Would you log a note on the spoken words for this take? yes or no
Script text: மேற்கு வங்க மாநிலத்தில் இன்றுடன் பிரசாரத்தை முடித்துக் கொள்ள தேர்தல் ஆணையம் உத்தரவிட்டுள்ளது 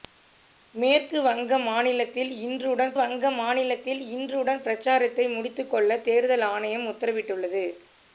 yes